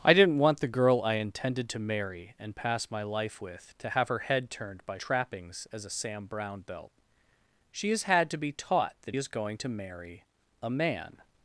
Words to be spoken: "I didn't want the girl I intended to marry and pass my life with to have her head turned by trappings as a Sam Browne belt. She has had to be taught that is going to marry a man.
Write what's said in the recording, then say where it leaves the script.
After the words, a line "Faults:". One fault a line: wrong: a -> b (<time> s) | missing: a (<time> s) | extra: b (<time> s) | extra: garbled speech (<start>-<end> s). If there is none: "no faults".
"I didn't want the girl I intended to marry and pass my life with to have her head turned by trappings as a Sam Browne belt. She has had to be taught that is going to marry a man.
Faults:
no faults